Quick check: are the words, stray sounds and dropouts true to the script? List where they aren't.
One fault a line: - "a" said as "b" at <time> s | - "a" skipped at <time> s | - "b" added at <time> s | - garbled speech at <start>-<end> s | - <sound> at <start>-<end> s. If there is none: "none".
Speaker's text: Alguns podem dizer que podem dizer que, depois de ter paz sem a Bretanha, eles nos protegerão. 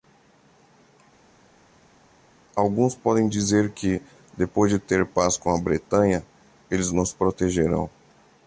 - "podem dizer que" skipped at 4.0 s
- "sem" said as "com" at 5.4 s